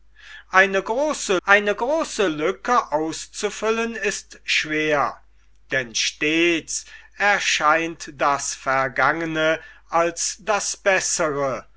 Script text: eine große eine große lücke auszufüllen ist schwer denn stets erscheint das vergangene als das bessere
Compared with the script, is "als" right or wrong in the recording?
right